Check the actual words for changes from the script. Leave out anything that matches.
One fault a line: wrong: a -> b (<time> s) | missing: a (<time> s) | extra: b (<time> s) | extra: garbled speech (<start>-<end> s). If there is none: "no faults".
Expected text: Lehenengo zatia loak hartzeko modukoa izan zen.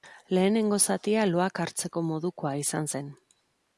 no faults